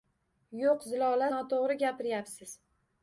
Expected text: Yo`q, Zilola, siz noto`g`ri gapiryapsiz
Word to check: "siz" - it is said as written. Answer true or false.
false